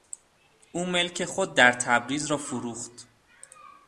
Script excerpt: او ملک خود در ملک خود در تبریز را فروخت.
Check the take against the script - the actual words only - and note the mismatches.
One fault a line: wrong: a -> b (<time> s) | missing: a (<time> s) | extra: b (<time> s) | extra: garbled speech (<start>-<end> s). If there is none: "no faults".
missing: ملک خود در (1.7 s)